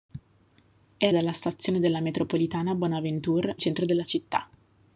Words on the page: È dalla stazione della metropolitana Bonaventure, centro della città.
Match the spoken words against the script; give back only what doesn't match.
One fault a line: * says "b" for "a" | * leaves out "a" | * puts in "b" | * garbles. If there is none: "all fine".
all fine